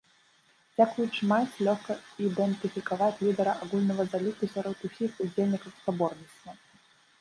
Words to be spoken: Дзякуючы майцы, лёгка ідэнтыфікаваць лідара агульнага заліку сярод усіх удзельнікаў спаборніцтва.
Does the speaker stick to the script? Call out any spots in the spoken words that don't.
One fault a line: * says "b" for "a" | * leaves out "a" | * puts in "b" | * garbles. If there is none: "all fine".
all fine